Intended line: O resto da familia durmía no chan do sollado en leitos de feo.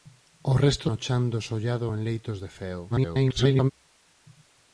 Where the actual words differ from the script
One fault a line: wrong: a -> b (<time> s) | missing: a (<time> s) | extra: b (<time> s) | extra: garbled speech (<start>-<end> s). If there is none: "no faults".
missing: da familia durmía (0.9 s)
extra: garbled speech (2.9-3.7 s)